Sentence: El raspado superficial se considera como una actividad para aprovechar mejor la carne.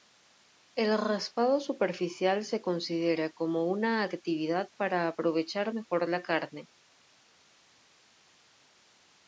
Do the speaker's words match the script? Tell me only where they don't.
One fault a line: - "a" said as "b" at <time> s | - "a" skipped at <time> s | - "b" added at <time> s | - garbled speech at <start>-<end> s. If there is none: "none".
none